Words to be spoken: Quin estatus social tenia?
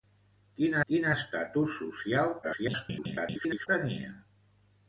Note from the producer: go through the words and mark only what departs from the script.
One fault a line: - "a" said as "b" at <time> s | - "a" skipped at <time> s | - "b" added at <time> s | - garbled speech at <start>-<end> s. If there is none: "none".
- "quin" added at 0.9 s
- garbled speech at 2.4-3.7 s